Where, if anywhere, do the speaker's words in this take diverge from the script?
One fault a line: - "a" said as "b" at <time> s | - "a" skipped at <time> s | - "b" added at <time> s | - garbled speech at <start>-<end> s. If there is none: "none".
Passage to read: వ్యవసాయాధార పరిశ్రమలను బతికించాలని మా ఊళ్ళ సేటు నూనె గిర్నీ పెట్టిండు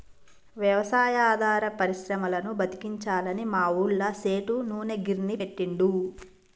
none